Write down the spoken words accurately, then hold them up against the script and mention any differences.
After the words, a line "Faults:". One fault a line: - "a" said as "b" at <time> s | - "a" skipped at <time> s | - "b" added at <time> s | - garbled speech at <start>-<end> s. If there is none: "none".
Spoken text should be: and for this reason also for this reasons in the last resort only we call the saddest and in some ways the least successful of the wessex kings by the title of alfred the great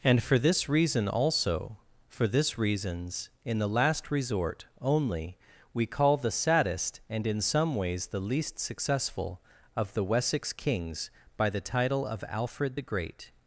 and for this reason also for this reasons in the last resort only we call the saddest and in some ways the least successful of the wessex kings by the title of alfred the great
Faults:
none